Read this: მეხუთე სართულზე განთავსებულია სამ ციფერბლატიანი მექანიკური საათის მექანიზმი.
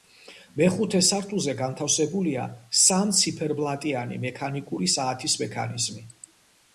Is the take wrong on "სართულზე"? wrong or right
right